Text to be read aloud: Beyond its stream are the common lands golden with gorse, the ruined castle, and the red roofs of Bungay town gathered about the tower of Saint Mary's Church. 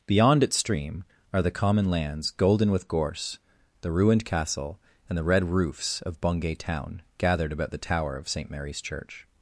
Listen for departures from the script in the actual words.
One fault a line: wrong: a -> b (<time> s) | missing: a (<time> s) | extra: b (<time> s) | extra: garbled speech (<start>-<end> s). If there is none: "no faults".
no faults